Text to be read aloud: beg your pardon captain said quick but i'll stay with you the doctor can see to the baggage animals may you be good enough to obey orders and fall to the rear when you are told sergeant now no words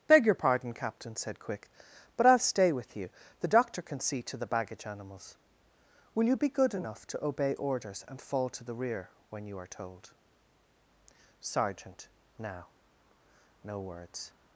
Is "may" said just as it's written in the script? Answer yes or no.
no